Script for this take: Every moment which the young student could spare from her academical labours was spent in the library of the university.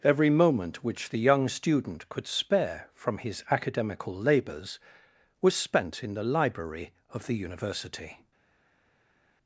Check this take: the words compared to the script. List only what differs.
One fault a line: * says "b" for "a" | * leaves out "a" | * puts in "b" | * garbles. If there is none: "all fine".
* says "his" for "her"